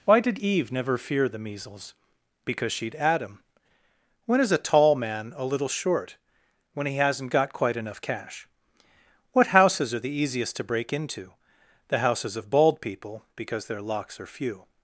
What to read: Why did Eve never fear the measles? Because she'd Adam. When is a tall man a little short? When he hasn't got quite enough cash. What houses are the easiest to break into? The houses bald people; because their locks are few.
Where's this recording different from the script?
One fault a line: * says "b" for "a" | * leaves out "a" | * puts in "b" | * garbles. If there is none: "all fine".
* puts in "of"